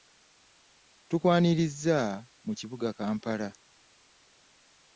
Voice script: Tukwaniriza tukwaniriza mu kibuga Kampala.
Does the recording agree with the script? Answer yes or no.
no